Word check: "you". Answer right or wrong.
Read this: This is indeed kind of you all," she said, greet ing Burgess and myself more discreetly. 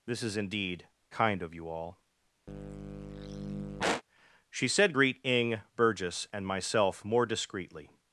right